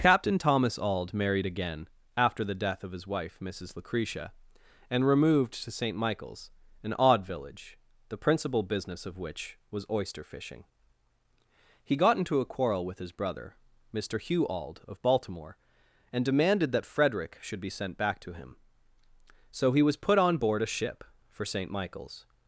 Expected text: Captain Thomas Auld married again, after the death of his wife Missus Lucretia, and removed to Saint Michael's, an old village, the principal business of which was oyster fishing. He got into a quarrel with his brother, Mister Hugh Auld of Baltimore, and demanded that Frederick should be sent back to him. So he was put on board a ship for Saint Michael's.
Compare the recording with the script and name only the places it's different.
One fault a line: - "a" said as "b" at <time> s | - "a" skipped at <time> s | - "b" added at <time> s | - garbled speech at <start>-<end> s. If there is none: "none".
- "old" said as "odd" at 7.0 s